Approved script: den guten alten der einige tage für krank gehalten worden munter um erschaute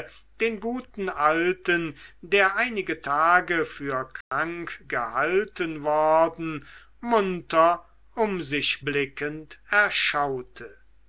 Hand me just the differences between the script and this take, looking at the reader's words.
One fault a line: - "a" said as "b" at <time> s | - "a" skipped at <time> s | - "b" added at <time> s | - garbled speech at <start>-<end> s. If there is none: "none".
- "sich blickend" added at 8.4 s